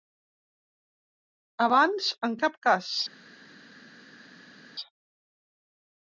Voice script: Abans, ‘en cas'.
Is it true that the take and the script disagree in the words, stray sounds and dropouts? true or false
true